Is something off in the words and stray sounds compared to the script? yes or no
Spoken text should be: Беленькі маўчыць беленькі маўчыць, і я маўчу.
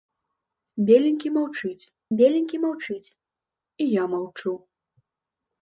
no